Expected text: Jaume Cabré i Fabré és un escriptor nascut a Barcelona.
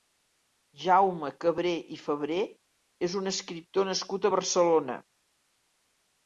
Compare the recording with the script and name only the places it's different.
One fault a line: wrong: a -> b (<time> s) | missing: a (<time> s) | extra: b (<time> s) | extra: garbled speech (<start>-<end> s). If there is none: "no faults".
no faults